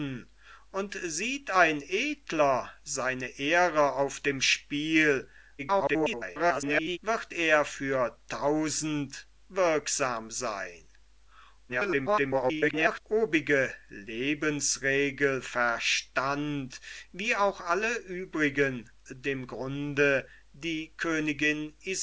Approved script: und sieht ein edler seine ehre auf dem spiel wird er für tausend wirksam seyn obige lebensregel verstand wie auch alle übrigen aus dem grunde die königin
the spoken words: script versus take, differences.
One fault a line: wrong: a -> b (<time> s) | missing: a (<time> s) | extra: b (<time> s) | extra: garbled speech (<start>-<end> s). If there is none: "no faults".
extra: garbled speech (5.6-7.0 s)
extra: garbled speech (11.7-13.0 s)
missing: aus (18.9 s)